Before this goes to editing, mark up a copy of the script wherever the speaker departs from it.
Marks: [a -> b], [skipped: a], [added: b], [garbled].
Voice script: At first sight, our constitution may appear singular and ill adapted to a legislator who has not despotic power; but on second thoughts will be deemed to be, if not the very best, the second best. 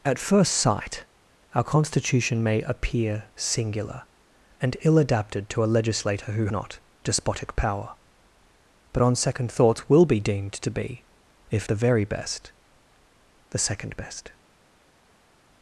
At first sight, our constitution may appear singular and ill adapted to a legislator who [skipped: has] not despotic power; but on second thoughts will be deemed to be, if [skipped: not] the very best, the second best.